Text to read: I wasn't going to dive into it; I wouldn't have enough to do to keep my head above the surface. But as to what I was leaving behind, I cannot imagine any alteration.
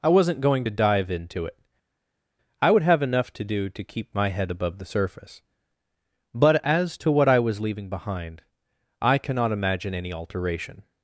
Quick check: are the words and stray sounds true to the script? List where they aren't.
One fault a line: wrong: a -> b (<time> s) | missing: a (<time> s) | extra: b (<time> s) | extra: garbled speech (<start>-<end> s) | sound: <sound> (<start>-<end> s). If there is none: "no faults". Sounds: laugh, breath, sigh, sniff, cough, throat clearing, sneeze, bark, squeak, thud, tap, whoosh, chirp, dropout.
wrong: wouldn't -> would (2.7 s)